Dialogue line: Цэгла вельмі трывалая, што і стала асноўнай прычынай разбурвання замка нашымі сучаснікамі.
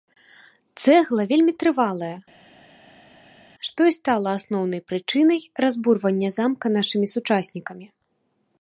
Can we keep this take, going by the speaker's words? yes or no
yes